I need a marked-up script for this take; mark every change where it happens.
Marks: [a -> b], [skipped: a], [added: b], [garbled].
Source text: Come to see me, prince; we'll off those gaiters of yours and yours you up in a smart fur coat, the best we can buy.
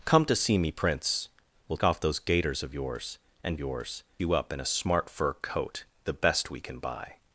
Come to see me, prince; we'll off those gaiters of yours and yours you up in a smart fur coat, the best we can buy.